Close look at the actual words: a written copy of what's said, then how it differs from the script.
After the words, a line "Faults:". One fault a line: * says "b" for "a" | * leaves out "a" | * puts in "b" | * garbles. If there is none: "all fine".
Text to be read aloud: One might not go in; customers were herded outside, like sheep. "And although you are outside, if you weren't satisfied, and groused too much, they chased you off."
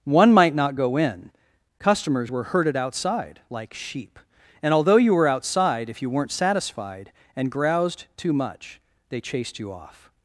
One might not go in; customers were herded outside, like sheep. "And although you were outside, if you weren't satisfied, and groused too much, they chased you off."
Faults:
* says "were" for "are"